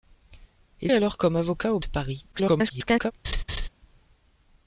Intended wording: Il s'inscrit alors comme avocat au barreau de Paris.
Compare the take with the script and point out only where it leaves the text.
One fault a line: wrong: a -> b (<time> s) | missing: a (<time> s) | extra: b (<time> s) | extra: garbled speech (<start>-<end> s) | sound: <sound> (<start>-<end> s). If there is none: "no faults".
missing: s'inscrit (0.9 s)
missing: barreau (1.8 s)
extra: garbled speech (2.3-3.1 s)
sound: laugh (3.2-3.7 s)